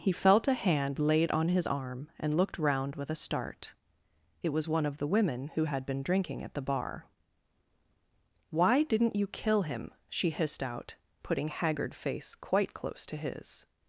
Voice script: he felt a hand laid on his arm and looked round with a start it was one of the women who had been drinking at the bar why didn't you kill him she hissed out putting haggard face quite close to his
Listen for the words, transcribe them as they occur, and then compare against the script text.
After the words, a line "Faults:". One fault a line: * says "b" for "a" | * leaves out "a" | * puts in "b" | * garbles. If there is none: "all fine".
he felt a hand laid on his arm and looked round with a start it was one of the women who had been drinking at the bar why didn't you kill him she hissed out putting haggard face quite close to his
Faults:
all fine